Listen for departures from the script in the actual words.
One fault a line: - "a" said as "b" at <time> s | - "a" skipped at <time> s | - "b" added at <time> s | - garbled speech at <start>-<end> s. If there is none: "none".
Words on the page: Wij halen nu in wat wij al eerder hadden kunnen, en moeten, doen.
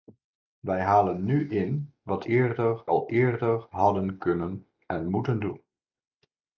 - "wij" said as "eerder" at 2.3 s